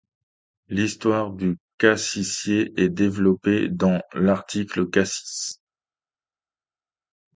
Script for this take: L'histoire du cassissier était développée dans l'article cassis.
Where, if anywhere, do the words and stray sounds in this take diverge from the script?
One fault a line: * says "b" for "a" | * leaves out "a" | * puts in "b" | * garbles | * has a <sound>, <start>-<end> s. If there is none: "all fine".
* says "est" for "était"